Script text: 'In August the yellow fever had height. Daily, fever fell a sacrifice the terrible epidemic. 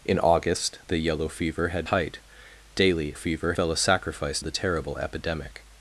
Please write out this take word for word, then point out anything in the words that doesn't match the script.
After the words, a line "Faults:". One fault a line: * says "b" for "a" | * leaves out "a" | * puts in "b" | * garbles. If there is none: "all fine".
'In August the yellow fever had height. Daily, fever fell a sacrifice the terrible epidemic.
Faults:
all fine